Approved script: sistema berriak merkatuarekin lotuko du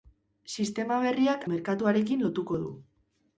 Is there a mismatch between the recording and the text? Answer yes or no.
no